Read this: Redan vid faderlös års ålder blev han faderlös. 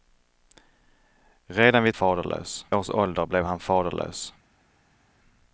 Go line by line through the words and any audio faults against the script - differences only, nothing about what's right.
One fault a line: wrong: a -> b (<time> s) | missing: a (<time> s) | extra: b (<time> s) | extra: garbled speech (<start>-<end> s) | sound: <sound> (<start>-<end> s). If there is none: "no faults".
no faults